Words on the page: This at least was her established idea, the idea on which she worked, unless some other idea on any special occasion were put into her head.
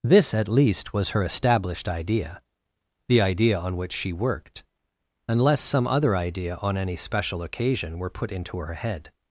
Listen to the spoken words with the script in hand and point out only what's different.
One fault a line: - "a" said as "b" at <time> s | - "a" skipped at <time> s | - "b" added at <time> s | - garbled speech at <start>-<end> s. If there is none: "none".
none